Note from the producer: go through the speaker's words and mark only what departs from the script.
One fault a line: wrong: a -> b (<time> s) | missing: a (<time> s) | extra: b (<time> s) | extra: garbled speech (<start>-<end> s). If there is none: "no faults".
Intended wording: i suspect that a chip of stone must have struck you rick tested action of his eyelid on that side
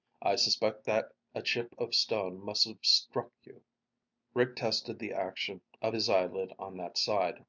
extra: the (5.0 s)